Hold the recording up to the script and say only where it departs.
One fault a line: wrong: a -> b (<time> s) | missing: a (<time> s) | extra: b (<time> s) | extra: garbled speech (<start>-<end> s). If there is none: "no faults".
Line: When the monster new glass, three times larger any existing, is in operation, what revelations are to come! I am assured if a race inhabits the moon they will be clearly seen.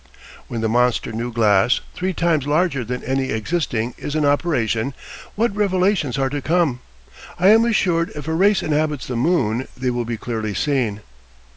extra: than (2.8 s)